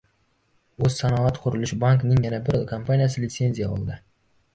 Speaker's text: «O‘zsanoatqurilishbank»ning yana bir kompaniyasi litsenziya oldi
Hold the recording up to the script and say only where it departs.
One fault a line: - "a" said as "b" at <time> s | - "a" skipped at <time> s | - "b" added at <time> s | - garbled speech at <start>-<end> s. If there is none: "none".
none